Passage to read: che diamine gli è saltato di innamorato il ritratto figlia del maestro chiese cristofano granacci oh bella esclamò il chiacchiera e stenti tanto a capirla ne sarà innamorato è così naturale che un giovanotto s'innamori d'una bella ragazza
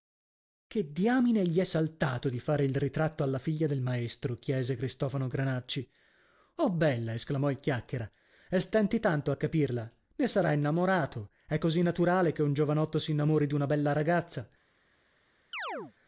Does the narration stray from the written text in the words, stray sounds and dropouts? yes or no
yes